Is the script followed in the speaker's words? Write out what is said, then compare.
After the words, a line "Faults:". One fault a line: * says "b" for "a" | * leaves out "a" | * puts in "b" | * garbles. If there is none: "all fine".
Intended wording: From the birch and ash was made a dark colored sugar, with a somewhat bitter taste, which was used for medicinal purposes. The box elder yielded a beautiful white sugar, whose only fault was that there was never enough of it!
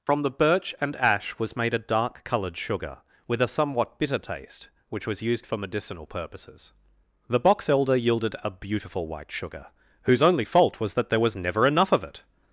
From the birch and ash was made a dark colored sugar, with a somewhat bitter taste, which was used for medicinal purposes. The box elder yielded a beautiful white sugar, whose only fault was that there was never enough of it!
Faults:
all fine